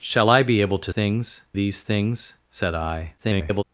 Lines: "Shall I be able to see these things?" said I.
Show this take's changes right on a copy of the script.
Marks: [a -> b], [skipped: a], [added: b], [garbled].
"Shall I be able to [see -> things] these things?" said I. [garbled]